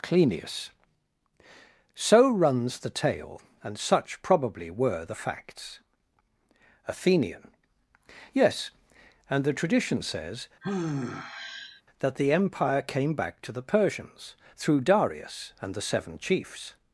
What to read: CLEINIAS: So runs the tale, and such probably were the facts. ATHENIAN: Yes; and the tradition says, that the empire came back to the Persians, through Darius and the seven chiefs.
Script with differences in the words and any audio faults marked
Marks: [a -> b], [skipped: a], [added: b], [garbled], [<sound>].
CLEINIAS: So runs the tale, and such probably were the facts. ATHENIAN: Yes; and the tradition says, [sigh] that the empire came back to the Persians, through Darius and the seven chiefs.